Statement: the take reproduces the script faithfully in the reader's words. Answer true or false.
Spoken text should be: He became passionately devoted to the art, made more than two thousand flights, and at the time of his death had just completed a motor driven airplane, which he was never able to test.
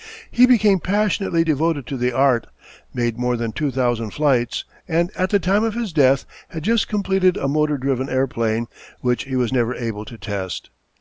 true